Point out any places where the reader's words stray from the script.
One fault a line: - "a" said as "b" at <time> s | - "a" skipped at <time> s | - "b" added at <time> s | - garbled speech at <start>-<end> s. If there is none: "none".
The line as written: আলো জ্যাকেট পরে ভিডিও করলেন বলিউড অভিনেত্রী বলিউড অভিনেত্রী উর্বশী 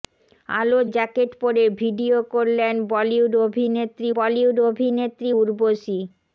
none